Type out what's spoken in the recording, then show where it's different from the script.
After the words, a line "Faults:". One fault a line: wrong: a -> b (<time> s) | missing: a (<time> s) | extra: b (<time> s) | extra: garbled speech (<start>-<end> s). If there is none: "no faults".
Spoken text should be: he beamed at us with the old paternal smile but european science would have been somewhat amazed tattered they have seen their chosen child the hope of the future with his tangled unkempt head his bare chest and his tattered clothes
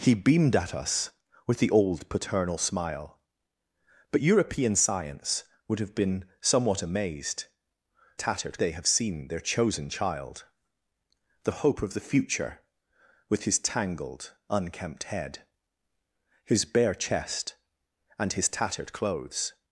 he beamed at us with the old paternal smile but european science would have been somewhat amazed tattered they have seen their chosen child the hope of the future with his tangled unkempt head his bare chest and his tattered clothes
Faults:
no faults